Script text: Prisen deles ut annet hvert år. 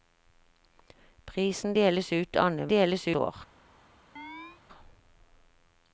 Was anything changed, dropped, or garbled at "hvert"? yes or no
yes